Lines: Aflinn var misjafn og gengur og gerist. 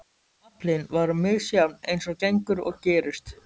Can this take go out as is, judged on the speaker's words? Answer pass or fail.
fail